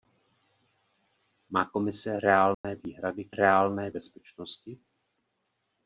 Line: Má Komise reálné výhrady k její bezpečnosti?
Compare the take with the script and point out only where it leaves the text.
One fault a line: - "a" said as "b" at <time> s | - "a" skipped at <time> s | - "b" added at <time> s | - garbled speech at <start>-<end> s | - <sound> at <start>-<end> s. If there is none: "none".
- dropout at 2.5-2.6 s
- "její" said as "reálné" at 3.3 s